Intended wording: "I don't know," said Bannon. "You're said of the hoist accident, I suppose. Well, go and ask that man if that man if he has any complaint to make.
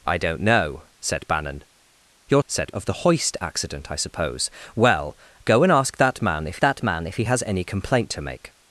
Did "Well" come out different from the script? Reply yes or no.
no